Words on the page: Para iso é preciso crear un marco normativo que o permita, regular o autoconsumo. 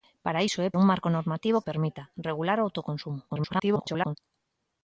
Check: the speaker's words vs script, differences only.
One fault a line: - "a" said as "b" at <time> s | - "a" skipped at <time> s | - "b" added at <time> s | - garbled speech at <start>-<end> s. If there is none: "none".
- "preciso crear" skipped at 0.7 s
- "que" skipped at 1.6 s
- garbled speech at 3.3-4.2 s